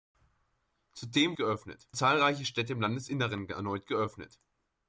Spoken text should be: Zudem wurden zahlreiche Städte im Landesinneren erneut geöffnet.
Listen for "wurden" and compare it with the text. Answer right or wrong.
wrong